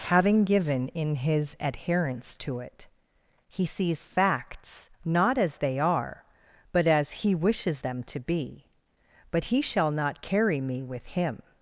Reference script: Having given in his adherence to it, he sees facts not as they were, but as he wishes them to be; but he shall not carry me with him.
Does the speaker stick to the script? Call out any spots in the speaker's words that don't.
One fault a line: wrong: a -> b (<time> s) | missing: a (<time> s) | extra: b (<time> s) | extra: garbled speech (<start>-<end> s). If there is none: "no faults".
wrong: were -> are (5.8 s)